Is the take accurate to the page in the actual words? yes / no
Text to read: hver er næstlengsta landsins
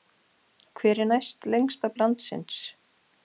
yes